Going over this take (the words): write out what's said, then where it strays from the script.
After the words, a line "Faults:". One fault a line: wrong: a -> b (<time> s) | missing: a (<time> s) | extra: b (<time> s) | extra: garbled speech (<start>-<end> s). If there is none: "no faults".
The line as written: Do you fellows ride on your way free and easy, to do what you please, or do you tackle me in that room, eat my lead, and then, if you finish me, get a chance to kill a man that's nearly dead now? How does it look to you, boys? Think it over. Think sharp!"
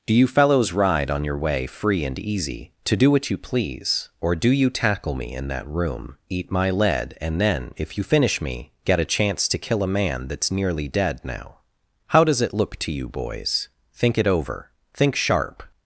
Do you fellows ride on your way free and easy, to do what you please, or do you tackle me in that room, eat my lead, and then, if you finish me, get a chance to kill a man that's nearly dead now? How does it look to you, boys? Think it over. Think sharp!"
Faults:
no faults